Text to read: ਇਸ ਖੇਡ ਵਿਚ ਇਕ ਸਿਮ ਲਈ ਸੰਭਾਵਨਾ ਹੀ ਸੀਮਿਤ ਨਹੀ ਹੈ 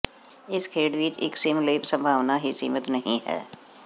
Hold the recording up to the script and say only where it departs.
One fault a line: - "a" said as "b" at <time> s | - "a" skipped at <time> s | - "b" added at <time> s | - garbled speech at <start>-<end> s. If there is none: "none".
none